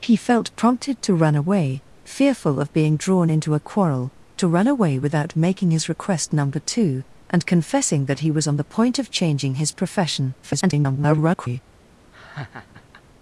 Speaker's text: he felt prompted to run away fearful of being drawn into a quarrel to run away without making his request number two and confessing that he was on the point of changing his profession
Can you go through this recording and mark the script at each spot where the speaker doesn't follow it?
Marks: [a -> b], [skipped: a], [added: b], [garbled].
he felt prompted to run away fearful of being drawn into a quarrel to run away without making his request number two and confessing that he was on the point of changing his profession [garbled]